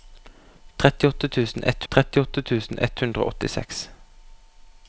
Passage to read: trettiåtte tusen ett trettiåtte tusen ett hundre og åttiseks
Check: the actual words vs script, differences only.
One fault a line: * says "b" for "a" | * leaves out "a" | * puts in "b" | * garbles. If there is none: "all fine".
all fine